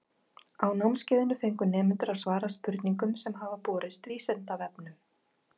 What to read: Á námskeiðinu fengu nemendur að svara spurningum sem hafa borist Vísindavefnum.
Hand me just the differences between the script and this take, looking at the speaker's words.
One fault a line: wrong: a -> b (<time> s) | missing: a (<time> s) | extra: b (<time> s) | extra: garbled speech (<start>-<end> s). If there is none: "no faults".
no faults